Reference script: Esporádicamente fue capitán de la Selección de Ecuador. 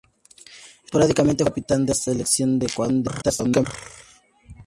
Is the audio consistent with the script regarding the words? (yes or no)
no